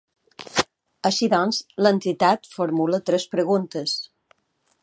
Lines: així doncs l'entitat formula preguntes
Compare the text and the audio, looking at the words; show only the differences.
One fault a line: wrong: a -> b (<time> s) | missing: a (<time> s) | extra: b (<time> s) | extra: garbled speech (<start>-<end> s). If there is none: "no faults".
extra: tres (3.1 s)